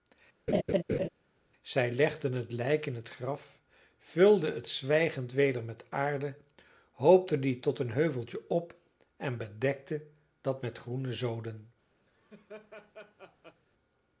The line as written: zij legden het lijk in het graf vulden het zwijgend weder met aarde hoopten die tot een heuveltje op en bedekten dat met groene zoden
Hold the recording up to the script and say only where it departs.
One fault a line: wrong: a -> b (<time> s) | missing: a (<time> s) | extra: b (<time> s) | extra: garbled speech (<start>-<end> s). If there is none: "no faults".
no faults